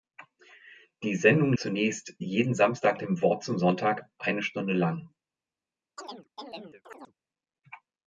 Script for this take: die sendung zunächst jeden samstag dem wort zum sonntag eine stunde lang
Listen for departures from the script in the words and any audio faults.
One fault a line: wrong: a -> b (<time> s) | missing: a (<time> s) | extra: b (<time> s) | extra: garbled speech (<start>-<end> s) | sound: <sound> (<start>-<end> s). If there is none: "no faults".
sound: chirp (6.0-7.1 s)